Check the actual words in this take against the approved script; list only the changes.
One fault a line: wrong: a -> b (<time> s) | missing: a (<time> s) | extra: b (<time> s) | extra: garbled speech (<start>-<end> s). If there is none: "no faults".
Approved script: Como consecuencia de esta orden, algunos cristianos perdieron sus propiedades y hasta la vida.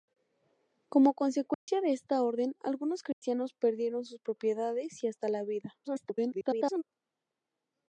extra: garbled speech (5.8-6.8 s)